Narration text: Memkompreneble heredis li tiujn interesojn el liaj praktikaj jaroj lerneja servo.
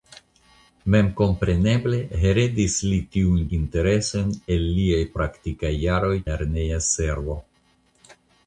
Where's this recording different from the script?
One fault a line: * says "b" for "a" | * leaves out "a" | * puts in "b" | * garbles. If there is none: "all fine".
all fine